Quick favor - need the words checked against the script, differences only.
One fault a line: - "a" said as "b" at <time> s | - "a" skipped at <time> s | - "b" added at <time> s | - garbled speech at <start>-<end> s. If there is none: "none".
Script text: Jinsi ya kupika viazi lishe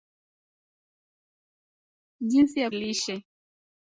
- "kupika viazi" skipped at 2.7 s